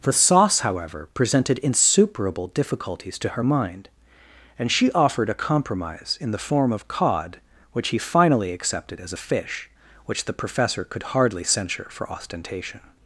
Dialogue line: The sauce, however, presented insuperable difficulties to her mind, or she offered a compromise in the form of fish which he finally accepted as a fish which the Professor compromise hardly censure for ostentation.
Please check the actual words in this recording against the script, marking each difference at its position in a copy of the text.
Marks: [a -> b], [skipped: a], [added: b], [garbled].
The sauce, however, presented insuperable difficulties to her mind, [or -> and] she offered a compromise in the form of [fish -> cod] which he finally accepted as a fish which the Professor [compromise -> could] hardly censure for ostentation.